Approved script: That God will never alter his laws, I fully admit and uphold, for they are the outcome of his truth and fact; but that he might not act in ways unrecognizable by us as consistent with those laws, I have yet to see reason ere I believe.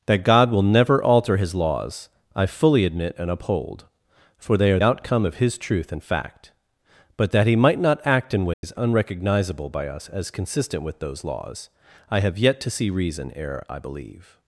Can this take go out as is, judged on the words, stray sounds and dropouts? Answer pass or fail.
fail